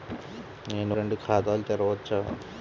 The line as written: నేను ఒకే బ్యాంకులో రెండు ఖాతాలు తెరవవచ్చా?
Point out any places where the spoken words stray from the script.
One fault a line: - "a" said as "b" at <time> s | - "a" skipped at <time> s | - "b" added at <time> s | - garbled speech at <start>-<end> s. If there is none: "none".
- "ఒకే బ్యాంకులో" skipped at 0.9 s